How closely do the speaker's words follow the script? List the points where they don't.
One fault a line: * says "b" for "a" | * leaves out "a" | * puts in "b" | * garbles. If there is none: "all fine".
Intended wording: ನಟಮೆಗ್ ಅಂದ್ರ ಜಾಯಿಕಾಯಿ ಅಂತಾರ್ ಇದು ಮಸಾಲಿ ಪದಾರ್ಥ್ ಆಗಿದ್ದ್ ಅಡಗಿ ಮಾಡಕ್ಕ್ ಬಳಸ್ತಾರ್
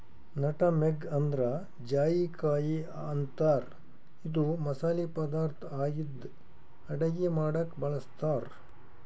all fine